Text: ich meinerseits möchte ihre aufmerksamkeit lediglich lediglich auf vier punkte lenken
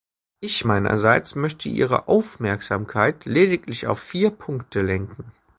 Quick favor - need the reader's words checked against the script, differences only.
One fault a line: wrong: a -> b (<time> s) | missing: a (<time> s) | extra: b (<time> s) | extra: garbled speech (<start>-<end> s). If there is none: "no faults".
missing: lediglich (3.9 s)